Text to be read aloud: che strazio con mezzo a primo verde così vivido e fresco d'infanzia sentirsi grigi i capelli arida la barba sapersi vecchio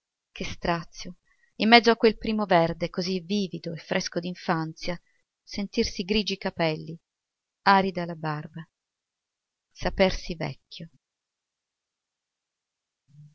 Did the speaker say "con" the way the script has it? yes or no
no